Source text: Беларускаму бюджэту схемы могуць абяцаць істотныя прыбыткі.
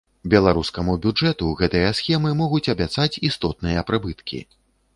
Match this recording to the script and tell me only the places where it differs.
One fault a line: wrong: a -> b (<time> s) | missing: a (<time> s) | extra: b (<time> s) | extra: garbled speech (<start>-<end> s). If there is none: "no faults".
extra: гэтыя (1.6 s)